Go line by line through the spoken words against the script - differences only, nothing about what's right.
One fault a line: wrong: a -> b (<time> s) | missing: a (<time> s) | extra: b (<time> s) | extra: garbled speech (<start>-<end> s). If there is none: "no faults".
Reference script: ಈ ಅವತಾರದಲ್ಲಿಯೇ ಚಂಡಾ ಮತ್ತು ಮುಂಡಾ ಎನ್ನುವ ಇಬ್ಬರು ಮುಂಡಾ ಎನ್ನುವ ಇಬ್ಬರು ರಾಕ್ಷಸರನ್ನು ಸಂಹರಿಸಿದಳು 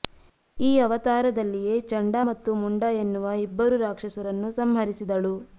missing: ಮುಂಡಾ ಎನ್ನುವ ಇಬ್ಬರು (3.8 s)